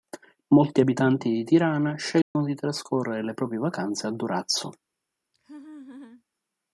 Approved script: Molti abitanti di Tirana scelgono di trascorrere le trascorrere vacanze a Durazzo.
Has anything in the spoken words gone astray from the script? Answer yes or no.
yes